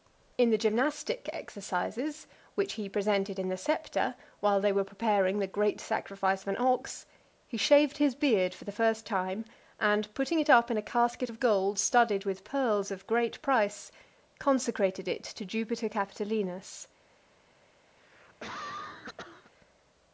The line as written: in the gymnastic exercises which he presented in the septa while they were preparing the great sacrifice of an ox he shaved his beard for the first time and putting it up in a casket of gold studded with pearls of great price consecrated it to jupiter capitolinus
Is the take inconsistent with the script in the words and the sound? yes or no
yes